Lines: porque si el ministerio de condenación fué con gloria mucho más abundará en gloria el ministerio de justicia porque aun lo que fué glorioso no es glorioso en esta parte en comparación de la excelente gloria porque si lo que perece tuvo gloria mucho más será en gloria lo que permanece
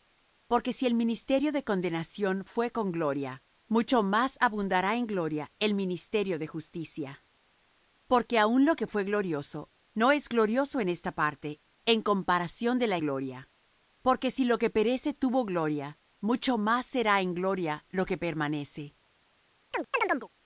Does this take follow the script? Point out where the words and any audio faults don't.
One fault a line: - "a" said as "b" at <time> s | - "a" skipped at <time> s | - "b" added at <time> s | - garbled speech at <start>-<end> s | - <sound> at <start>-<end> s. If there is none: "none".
- "excelente" skipped at 13.0 s
- chirp at 19.7-20.3 s